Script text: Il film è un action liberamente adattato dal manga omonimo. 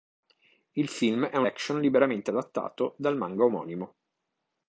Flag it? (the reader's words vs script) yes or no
no